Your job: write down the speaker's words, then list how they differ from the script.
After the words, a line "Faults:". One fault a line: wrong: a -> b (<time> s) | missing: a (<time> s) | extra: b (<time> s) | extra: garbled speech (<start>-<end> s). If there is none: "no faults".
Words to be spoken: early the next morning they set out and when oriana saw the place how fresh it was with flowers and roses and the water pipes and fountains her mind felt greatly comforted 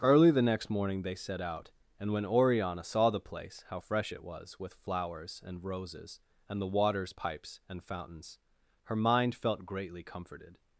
early the next morning they set out and when oriana saw the place how fresh it was with flowers and roses and the waters pipes and fountains her mind felt greatly comforted
Faults:
wrong: water -> waters (6.7 s)